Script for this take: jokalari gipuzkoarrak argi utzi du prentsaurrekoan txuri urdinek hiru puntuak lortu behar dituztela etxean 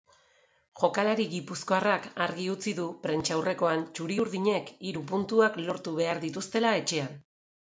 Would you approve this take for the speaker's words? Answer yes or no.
yes